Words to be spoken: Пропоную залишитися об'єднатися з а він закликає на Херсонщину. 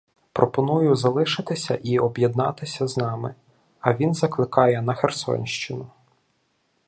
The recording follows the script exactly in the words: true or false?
false